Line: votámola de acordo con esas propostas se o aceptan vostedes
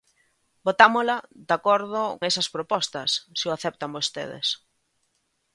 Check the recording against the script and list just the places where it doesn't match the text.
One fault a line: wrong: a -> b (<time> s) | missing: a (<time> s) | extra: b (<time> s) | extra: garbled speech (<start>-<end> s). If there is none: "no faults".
missing: con (2.0 s)